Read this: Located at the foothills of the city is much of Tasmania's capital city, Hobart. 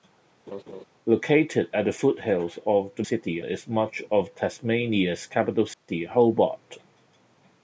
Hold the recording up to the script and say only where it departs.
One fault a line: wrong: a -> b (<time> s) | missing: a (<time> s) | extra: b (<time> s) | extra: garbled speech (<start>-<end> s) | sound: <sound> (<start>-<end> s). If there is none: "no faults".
sound: laugh (0.5-0.8 s)
sound: dropout (5.7-5.9 s)